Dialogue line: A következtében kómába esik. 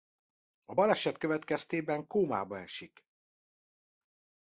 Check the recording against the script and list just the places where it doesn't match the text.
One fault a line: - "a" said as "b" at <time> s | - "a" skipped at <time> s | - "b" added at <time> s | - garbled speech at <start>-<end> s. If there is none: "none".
- "baleset" added at 0.7 s